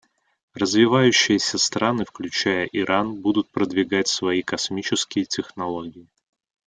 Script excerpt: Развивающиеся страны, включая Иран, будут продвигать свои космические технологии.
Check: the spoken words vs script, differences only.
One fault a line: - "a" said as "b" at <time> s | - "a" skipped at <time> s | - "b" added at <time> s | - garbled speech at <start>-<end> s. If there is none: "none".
none